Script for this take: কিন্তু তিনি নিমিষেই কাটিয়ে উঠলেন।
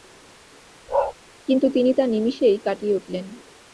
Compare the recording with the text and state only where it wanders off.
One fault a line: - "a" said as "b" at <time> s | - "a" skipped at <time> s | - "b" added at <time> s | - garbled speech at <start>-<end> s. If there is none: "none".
- "তা" added at 1.9 s